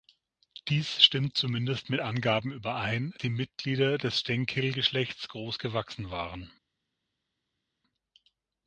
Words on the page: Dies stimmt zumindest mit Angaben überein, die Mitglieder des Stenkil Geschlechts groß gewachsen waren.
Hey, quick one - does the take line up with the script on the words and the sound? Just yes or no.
yes